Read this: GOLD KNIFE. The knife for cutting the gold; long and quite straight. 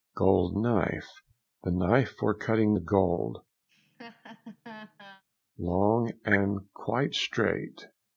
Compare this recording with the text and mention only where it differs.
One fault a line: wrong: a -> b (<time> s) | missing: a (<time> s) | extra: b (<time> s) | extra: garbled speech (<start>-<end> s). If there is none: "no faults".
no faults